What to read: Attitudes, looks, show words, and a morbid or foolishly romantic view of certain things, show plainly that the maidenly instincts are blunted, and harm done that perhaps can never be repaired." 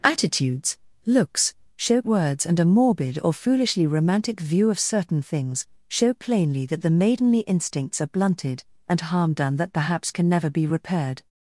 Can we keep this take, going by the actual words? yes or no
yes